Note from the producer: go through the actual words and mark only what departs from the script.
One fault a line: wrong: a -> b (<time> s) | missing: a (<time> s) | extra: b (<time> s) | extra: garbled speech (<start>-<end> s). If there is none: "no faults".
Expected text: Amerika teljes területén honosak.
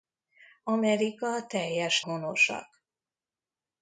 missing: területén (2.0 s)